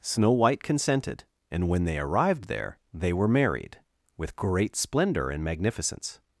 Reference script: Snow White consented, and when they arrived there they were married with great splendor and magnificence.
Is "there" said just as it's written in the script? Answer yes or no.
yes